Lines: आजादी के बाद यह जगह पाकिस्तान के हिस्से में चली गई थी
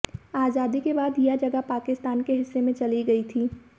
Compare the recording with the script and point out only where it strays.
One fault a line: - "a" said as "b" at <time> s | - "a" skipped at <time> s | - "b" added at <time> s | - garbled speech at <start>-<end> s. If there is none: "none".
none